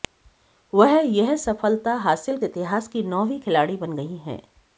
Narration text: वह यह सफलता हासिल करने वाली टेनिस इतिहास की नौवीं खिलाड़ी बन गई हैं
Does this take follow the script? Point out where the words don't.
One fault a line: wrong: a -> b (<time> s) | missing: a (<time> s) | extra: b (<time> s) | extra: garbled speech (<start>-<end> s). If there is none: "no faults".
missing: करने वाली टेनिस (2.4 s)